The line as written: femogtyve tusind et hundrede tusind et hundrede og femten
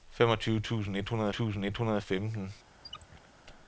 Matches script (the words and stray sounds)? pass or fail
fail